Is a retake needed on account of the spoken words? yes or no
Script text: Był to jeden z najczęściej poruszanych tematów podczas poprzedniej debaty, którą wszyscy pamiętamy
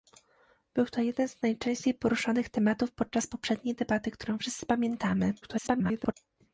yes